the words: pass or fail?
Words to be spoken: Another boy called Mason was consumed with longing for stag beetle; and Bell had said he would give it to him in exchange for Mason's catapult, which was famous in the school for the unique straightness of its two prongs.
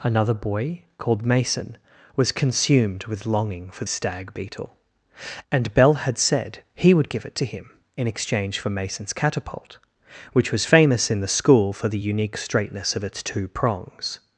pass